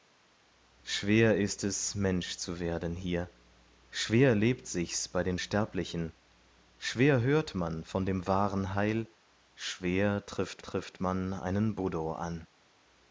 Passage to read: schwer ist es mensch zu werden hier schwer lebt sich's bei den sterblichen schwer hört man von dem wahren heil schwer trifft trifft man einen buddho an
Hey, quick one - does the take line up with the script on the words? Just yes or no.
yes